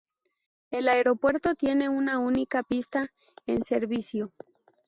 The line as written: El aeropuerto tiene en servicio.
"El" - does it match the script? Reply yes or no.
yes